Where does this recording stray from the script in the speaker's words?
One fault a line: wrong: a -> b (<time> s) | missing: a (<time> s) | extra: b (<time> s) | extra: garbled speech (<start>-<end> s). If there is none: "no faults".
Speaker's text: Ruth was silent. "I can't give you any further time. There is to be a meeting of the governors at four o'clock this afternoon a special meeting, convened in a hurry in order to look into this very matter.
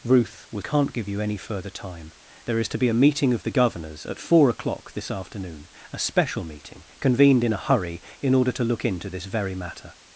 missing: silent I (0.7 s)